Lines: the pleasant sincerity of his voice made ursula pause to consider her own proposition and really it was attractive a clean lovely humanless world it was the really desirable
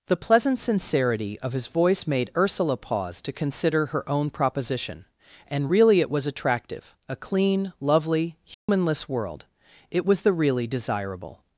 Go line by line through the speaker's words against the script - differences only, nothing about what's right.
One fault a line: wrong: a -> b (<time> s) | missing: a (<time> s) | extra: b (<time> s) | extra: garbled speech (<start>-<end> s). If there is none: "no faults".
no faults